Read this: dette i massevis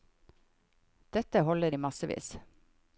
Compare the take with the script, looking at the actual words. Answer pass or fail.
fail